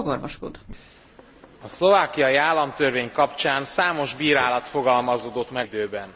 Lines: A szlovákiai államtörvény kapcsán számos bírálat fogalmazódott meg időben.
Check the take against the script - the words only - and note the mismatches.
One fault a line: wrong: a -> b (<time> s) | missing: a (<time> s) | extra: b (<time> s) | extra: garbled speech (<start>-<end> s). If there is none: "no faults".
no faults